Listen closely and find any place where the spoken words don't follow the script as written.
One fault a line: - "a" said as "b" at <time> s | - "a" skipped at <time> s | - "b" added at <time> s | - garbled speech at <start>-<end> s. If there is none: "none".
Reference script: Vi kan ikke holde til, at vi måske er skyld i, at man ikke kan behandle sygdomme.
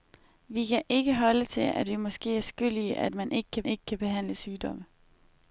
- "ikke kan" added at 3.6 s